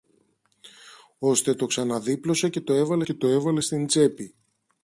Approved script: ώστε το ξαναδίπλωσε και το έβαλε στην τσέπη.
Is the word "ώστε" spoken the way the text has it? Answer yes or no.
yes